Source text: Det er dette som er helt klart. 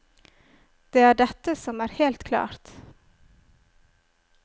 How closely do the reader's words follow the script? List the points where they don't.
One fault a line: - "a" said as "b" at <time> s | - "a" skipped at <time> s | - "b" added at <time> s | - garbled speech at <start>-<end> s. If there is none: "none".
none